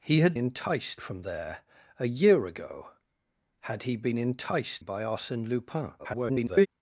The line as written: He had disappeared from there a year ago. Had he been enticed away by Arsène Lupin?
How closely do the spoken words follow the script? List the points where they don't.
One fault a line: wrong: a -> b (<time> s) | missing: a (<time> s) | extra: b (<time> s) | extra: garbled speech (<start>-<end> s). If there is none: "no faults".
wrong: disappeared -> enticed (0.3 s)
missing: away (4.8 s)
extra: garbled speech (6.0-6.7 s)